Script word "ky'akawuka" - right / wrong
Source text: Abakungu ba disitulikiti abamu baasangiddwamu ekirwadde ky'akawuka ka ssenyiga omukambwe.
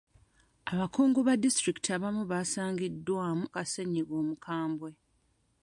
wrong